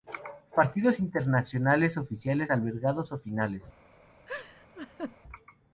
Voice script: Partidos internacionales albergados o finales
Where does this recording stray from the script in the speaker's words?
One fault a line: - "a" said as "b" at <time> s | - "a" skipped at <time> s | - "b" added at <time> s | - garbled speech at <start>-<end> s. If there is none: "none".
- "oficiales" added at 2.0 s